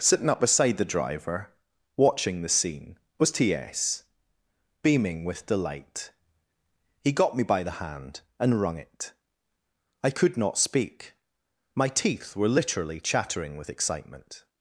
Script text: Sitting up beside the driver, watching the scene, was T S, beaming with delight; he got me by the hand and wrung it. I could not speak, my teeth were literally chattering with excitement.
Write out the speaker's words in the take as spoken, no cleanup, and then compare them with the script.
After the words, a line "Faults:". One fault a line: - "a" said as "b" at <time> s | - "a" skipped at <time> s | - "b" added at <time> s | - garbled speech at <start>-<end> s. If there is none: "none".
Sitting up beside the driver, watching the scene, was T S, beaming with delight; he got me by the hand and wrung it. I could not speak, my teeth were literally chattering with excitement.
Faults:
none